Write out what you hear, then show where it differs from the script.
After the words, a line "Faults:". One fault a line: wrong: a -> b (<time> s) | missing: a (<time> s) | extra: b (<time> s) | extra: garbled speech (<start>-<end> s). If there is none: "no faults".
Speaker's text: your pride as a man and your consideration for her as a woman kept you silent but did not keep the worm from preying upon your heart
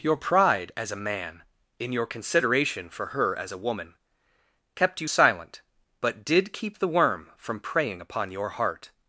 your pride as a man in your consideration for her as a woman kept you silent but did keep the worm from preying upon your heart
Faults:
wrong: and -> in (1.8 s)
missing: not (6.5 s)